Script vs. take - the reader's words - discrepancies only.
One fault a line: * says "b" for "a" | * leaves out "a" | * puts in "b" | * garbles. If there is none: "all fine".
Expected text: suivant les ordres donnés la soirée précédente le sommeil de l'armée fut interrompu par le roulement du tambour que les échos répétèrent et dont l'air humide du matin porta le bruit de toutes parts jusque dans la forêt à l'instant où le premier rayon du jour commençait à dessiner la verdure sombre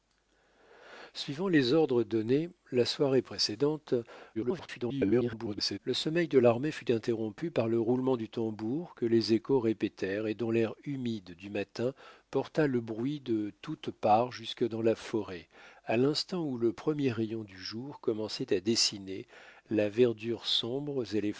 * garbles